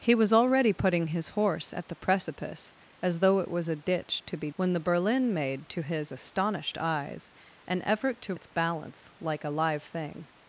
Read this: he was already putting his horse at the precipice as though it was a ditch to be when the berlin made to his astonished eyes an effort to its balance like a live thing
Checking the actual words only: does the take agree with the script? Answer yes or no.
yes